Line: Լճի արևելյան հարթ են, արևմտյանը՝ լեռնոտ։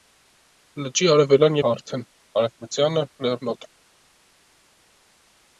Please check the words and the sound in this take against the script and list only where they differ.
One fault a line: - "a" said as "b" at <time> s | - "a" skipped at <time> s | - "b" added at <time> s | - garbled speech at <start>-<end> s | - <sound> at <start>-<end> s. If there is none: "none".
none